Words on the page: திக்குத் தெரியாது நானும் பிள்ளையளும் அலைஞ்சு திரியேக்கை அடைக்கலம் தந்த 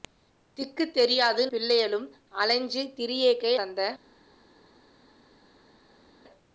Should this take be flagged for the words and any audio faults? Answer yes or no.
yes